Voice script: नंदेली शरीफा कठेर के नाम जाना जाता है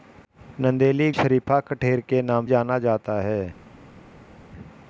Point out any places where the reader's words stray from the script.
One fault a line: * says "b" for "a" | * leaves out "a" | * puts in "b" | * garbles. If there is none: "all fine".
all fine